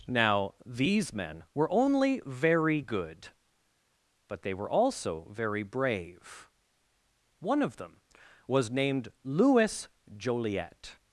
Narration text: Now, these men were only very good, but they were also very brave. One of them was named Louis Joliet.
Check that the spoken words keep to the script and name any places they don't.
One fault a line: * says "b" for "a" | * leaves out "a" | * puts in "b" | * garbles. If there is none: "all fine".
all fine